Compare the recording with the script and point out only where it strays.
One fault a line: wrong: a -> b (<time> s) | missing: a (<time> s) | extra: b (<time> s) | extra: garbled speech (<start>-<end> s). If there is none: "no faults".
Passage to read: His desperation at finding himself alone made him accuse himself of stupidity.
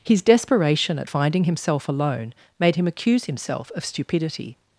no faults